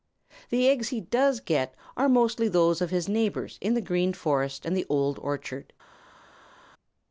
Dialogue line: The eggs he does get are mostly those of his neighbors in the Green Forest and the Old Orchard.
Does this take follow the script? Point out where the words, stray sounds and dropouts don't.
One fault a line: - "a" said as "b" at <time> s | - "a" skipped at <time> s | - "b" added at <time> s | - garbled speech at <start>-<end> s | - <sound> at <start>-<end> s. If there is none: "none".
none